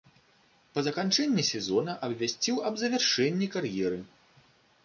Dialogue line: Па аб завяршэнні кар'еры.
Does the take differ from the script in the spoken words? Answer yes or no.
yes